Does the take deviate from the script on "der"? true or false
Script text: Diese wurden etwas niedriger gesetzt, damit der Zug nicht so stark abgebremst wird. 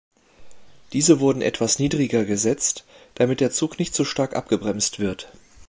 false